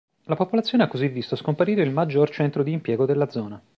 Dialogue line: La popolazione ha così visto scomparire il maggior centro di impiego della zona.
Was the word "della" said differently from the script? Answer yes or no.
no